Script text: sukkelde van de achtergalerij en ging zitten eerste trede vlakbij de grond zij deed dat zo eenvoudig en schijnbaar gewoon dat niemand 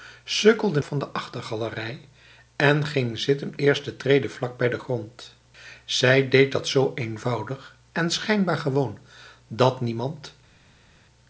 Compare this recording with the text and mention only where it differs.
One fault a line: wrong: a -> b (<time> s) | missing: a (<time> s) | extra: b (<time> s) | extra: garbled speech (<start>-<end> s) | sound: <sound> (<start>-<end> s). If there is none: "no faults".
no faults